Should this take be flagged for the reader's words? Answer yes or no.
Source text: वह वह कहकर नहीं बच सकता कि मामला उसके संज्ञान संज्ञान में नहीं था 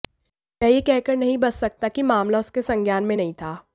yes